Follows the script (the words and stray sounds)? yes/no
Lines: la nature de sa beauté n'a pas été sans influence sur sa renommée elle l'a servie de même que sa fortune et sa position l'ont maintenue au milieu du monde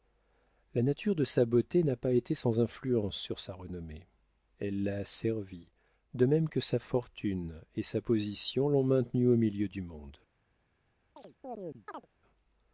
no